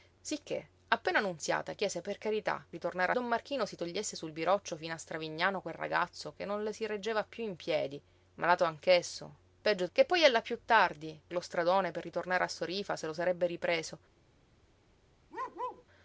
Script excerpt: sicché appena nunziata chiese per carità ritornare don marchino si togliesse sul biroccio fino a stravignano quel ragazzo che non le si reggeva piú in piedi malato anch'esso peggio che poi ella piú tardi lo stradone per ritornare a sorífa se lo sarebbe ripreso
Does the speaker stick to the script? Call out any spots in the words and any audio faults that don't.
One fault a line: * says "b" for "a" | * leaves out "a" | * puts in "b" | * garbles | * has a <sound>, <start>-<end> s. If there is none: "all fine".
* has a bark, 15.3-15.8 s